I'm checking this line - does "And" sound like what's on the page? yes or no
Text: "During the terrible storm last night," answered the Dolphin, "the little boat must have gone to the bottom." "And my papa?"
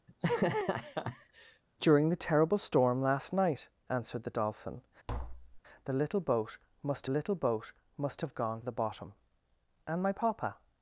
yes